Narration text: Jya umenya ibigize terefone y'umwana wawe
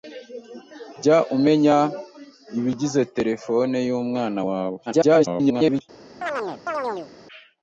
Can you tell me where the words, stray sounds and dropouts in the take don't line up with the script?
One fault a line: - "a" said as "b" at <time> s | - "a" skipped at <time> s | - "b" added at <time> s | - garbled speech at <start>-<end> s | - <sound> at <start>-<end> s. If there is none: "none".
- garbled speech at 4.9-5.8 s
- chirp at 6.2-7.1 s